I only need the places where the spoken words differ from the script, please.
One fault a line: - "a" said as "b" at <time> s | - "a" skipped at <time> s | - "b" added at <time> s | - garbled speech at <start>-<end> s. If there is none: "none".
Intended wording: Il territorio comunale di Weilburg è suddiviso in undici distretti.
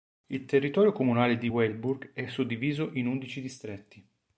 none